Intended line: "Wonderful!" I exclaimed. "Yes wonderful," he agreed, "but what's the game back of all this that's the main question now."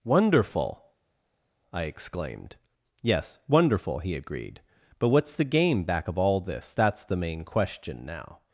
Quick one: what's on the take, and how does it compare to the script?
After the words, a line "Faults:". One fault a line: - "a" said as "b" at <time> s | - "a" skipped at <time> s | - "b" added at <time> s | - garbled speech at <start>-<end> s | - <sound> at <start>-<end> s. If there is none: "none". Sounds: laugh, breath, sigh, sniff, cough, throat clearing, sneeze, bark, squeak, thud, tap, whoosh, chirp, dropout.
"Wonderful!" I exclaimed. "Yes wonderful," he agreed, "but what's the game back of all this that's the main question now."
Faults:
none